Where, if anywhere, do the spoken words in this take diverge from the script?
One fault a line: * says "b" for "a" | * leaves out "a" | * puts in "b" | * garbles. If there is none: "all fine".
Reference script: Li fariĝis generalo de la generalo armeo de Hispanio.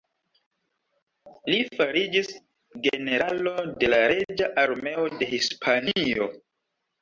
* says "reĝa" for "generalo"